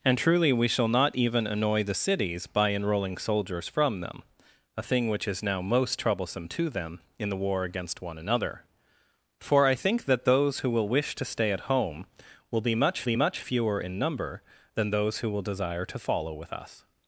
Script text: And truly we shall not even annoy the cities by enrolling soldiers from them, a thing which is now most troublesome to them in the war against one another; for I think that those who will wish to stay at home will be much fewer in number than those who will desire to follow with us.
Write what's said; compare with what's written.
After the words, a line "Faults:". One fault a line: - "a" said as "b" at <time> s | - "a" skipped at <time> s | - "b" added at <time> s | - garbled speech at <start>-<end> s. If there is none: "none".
And truly we shall not even annoy the cities by enrolling soldiers from them, a thing which is now most troublesome to them in the war against one another; for I think that those who will wish to stay at home will be much be much fewer in number than those who will desire to follow with us.
Faults:
- "be much" added at 13.0 s